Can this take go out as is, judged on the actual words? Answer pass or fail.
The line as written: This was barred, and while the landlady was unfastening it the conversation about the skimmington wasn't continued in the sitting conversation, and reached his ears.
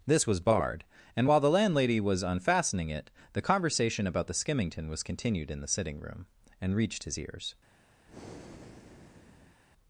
fail